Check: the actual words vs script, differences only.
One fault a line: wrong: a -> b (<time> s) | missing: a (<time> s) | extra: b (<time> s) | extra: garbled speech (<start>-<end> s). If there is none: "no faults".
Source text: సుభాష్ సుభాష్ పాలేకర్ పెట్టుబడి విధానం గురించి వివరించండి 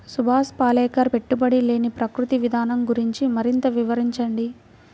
missing: సుభాష్ (0.5 s)
extra: లేని ప్రకృతి (1.6 s)
extra: మరింత (3.4 s)